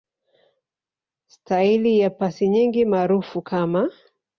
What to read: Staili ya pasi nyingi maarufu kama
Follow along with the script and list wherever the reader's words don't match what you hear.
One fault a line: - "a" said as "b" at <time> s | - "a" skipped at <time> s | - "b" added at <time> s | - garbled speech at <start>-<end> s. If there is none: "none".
none